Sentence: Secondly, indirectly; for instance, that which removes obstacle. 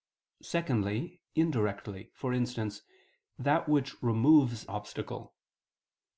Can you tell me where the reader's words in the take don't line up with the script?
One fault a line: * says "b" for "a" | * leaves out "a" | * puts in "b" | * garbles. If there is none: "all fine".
all fine